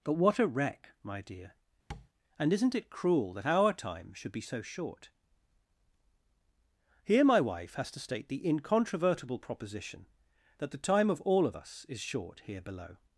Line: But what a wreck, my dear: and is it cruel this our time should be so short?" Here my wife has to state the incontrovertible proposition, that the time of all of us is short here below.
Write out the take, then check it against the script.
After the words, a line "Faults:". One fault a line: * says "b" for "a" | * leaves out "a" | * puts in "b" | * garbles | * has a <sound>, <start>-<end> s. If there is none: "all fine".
But what a wreck, my dear: and isn't it cruel that our time should be so short?" Here my wife has to state the incontrovertible proposition, that the time of all of us is short here below.
Faults:
* has a tap, 1.9-2.1 s
* says "isn't" for "is"
* says "that" for "this"